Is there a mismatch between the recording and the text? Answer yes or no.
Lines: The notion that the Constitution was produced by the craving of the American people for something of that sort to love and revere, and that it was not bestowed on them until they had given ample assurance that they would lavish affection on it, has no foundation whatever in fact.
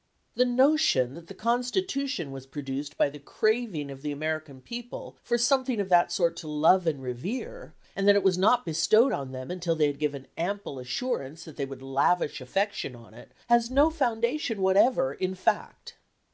no